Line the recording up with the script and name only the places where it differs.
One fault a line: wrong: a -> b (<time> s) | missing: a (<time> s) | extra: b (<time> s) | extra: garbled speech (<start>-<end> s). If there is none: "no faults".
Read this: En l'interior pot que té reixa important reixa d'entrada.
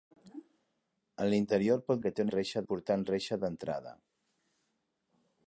no faults